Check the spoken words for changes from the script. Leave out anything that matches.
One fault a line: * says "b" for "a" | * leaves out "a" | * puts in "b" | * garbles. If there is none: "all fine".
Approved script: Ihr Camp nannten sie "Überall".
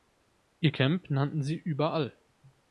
all fine